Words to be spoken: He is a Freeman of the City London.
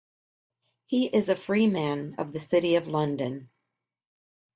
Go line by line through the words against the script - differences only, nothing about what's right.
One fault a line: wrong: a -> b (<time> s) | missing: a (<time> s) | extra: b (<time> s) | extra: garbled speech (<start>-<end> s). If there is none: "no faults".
extra: of (2.8 s)